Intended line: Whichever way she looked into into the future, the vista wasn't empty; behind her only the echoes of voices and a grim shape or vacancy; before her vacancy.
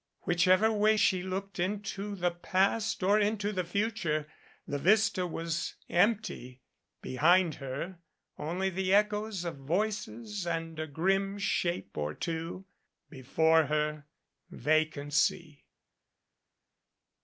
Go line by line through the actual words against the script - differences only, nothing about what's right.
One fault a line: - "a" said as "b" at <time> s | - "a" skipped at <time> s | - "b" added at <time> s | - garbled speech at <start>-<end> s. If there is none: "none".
- "the past or" added at 2.1 s
- "wasn't" said as "was" at 5.3 s
- "vacancy" said as "two" at 12.1 s